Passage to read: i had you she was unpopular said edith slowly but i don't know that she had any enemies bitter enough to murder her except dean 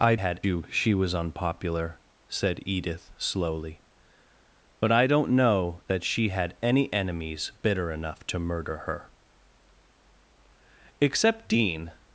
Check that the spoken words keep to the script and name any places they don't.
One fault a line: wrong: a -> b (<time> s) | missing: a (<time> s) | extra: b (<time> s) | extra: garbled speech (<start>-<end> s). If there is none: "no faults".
no faults